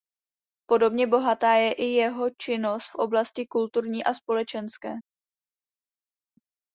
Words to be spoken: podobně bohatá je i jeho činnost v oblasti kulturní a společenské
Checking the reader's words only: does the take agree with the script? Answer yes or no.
yes